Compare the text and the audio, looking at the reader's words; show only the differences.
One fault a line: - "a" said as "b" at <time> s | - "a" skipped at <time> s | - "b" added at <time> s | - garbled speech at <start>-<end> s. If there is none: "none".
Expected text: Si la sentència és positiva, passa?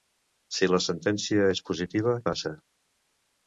none